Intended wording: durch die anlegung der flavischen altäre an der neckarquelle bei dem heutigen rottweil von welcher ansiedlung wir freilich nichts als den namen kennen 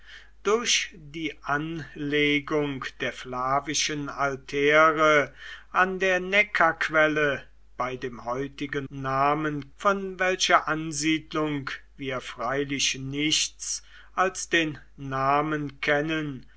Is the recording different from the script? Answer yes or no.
yes